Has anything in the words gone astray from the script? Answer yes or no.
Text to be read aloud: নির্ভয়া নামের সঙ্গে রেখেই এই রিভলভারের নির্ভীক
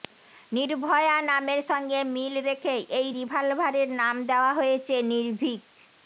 yes